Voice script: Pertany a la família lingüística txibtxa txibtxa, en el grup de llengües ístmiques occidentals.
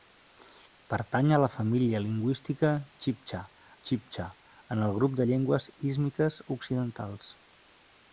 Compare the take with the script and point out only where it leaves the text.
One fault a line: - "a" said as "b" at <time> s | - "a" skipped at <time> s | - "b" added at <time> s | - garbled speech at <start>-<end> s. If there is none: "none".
none